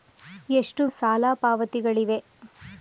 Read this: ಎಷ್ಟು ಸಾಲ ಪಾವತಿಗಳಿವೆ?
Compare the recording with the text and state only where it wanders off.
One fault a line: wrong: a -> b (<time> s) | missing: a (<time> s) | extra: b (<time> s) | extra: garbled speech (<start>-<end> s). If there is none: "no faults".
no faults